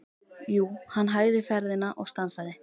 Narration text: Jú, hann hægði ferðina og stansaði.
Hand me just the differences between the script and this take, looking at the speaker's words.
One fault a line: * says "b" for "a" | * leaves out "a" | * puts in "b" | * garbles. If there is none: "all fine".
all fine